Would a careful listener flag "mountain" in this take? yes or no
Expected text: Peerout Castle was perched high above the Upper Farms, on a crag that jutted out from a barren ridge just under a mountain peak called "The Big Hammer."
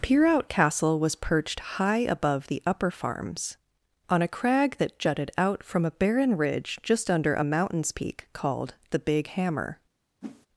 yes